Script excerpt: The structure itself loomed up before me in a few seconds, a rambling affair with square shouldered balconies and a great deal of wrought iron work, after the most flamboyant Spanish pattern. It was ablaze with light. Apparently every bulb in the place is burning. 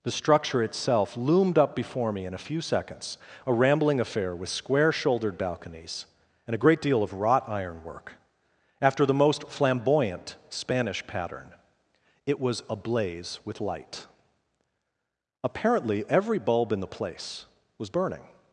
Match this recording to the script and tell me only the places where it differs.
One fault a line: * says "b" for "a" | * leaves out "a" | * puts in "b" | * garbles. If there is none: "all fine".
* says "was" for "is"